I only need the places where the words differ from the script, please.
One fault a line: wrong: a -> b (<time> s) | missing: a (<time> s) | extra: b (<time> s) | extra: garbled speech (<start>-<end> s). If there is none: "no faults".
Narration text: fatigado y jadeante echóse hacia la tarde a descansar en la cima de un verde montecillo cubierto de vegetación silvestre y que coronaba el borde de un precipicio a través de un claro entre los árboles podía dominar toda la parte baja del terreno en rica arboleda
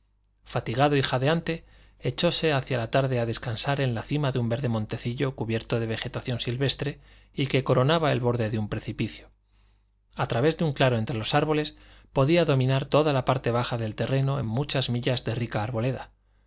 extra: muchas millas de (14.4 s)